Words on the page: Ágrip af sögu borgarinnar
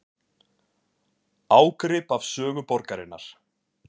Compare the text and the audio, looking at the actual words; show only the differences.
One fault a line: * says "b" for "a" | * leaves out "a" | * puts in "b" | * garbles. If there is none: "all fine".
all fine